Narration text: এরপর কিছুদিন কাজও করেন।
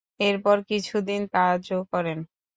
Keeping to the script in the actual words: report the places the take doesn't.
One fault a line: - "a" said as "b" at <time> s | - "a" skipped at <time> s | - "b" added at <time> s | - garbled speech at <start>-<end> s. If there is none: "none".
none